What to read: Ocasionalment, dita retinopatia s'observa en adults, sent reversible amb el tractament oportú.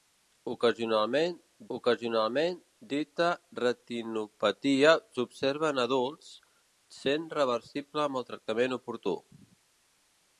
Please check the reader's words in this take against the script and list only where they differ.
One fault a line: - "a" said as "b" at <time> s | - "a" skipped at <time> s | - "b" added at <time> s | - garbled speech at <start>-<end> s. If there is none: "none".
- "ocasionalment" added at 1.7 s